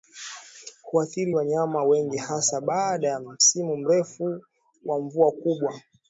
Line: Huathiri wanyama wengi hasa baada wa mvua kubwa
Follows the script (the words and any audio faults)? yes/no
no